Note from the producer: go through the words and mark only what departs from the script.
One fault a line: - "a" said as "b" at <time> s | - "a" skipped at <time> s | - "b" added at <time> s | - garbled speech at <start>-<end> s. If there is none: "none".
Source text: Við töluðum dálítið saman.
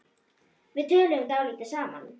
none